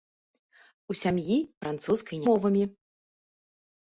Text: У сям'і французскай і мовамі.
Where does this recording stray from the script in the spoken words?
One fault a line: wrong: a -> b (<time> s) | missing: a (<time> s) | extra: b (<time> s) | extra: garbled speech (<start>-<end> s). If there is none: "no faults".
no faults